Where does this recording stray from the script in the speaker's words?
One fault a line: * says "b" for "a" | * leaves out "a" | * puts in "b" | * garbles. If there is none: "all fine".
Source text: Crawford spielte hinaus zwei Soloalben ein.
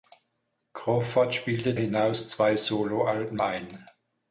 all fine